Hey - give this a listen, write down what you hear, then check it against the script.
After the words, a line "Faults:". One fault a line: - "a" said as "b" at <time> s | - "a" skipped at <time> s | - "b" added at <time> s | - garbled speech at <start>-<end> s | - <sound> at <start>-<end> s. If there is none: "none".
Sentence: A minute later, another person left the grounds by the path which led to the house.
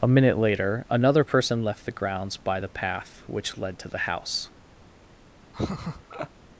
A minute later, another person left the grounds by the path which led to the house.
Faults:
- laugh at 5.5-6.3 s